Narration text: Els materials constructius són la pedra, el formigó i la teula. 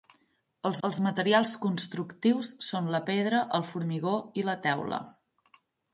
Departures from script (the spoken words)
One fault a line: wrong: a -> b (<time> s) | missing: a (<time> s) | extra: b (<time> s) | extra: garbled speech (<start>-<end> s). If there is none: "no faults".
extra: els (0.9 s)